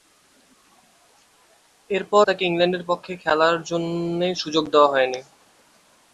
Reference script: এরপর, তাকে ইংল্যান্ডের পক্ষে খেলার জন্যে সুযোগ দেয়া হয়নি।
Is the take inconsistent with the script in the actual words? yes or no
no